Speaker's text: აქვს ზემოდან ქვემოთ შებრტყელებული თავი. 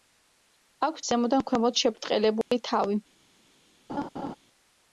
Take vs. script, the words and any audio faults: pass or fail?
fail